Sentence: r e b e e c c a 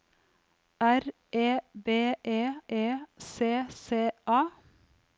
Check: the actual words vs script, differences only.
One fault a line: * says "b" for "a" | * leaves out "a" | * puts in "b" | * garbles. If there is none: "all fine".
all fine